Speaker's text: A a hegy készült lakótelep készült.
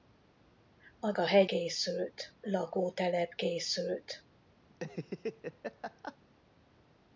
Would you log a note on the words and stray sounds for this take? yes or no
yes